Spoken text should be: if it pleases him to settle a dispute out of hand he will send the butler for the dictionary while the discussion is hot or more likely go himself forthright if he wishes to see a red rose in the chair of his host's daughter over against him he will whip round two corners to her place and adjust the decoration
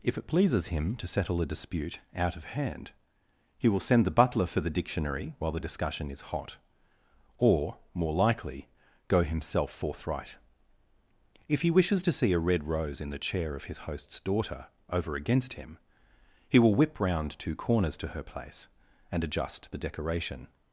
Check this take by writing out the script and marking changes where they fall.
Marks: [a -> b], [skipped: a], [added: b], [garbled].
if it pleases him to settle a dispute out of hand he will send the butler for the dictionary while the discussion is hot or more likely go himself forthright if he wishes to see a red rose in the chair of his host's daughter over against him he will whip round two corners to her place and adjust the decoration